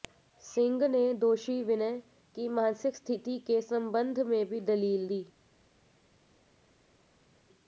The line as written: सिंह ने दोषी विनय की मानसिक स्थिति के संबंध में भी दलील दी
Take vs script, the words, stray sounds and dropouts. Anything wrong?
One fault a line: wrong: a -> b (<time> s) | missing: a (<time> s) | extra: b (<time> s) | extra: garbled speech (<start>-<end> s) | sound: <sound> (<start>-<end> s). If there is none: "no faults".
no faults